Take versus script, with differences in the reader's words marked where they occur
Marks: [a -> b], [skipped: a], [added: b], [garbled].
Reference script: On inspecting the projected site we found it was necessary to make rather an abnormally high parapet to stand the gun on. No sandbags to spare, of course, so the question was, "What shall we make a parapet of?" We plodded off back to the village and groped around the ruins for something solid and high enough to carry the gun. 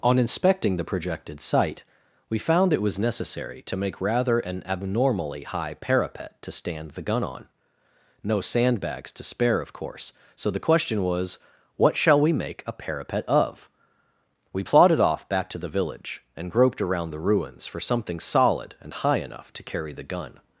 On inspecting the projected site we found it was necessary to make rather an abnormally high parapet to stand the gun on. No sandbags to spare, of course, so the question was, "What shall we make a parapet of?" We plodded off back to the village and groped around the ruins for something solid and high enough to carry the gun.